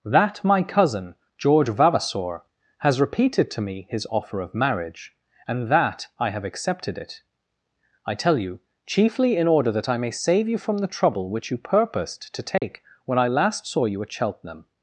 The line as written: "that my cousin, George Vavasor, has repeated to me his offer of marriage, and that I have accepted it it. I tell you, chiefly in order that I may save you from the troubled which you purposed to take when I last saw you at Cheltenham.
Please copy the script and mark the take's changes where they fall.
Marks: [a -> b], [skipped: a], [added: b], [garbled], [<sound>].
"that my cousin, George Vavasor, has repeated to me his offer of marriage, and that I have accepted it [skipped: it.] I tell you, chiefly in order that I may save you from the [troubled -> trouble] which you purposed to take [dropout] when I last saw you at Cheltenham.